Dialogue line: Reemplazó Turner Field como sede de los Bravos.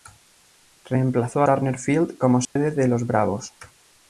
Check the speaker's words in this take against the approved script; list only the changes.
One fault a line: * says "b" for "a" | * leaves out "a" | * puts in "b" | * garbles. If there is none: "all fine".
all fine